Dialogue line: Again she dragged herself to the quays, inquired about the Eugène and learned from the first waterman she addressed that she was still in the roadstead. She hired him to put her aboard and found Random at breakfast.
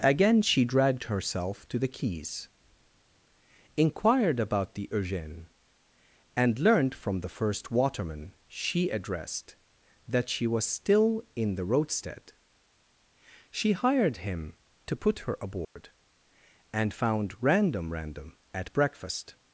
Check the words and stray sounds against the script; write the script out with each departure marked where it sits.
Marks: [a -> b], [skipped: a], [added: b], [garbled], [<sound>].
Again she dragged herself to the quays, inquired about the Eugène and learned from the first waterman she addressed that she was still in the roadstead. She hired him to put her aboard [dropout] and found Random [added: Random] at breakfast.